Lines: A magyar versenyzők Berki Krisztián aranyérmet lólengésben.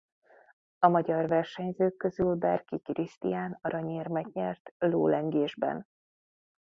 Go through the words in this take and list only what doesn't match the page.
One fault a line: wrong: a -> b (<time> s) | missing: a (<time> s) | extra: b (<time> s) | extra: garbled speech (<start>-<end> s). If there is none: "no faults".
extra: közül (2.0 s)
extra: nyert (4.3 s)